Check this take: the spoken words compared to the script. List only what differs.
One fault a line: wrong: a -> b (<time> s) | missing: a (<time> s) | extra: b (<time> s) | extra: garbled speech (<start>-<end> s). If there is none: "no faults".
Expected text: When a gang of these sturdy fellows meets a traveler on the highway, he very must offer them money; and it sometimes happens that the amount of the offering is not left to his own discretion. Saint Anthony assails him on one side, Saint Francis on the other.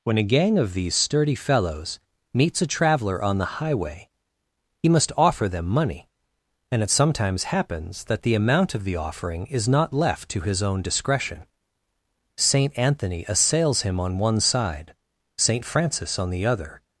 missing: very (4.9 s)